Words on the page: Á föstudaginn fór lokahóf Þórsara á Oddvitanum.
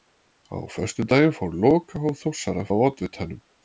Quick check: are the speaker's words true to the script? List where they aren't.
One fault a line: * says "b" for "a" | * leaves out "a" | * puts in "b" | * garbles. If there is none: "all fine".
all fine